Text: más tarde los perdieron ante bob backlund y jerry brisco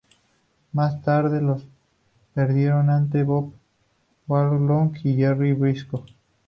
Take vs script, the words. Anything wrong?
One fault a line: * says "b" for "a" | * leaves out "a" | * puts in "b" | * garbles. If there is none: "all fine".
all fine